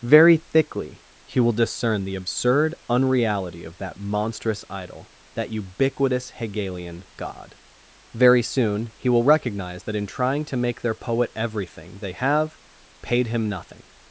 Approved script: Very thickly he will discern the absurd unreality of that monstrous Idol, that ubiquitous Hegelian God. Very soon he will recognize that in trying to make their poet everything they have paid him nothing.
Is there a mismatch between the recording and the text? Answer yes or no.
no